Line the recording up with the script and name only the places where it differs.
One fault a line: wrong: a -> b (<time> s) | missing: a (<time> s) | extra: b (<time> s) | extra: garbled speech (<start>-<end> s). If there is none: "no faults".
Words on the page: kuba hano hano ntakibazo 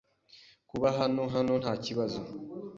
no faults